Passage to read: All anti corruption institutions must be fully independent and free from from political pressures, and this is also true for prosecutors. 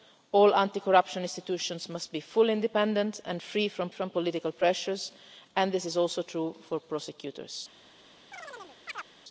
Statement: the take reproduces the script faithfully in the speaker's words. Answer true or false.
true